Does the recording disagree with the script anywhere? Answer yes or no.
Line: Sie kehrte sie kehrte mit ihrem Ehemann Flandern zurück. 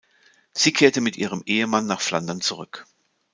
yes